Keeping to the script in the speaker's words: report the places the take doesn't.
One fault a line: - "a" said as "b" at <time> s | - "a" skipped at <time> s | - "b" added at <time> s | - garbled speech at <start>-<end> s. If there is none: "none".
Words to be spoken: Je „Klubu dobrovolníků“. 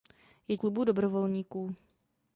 none